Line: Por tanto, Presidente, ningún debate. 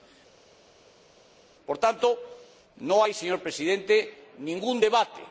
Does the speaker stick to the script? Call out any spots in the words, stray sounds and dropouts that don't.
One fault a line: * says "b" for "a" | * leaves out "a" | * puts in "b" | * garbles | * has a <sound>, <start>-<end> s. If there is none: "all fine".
* puts in "no hay señor"